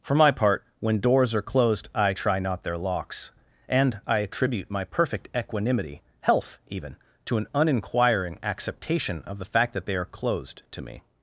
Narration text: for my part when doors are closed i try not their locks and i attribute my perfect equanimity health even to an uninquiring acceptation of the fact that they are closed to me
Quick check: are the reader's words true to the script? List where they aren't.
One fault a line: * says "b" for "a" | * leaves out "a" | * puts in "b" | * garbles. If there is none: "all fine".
all fine